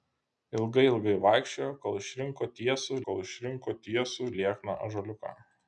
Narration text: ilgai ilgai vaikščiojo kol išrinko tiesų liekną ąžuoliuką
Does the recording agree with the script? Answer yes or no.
no